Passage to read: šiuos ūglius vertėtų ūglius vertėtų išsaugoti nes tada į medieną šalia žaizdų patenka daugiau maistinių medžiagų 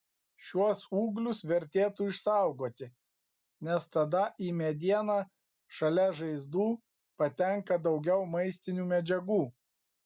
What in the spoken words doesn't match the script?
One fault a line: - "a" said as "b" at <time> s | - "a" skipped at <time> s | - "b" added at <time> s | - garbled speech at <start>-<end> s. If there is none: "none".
- "ūglius vertėtų" skipped at 2.1 s